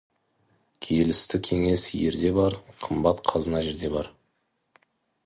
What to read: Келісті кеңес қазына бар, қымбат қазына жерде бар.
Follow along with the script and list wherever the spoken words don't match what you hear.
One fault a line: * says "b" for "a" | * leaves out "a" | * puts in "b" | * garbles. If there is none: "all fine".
* says "ерде" for "қазына"